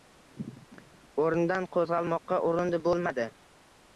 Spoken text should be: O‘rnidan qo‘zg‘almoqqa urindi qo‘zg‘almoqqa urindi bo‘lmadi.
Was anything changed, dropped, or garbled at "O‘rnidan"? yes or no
no